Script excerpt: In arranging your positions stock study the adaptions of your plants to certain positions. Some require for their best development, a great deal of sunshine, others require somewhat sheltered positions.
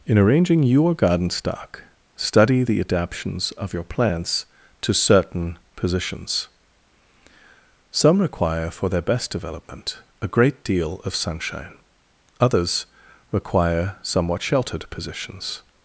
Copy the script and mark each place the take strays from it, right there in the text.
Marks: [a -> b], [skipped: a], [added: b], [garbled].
In arranging your [positions -> garden] stock study the adaptions of your plants to certain positions. Some require for their best development, a great deal of sunshine, others require somewhat sheltered positions.